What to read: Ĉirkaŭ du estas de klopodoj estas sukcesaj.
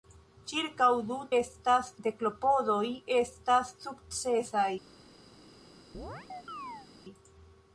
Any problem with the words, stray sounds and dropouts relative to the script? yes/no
yes